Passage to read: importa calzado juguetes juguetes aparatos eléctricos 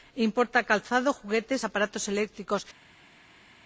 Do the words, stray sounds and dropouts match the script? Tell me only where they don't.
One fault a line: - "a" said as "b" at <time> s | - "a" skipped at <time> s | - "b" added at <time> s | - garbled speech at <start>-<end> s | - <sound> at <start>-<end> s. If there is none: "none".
- "juguetes" skipped at 1.6 s